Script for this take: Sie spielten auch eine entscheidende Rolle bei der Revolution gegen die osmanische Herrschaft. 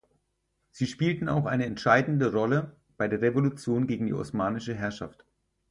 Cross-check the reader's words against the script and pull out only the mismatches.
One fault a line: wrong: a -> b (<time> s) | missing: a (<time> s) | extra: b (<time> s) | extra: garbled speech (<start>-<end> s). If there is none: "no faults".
no faults